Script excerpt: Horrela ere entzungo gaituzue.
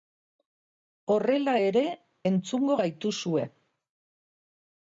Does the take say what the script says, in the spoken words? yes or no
yes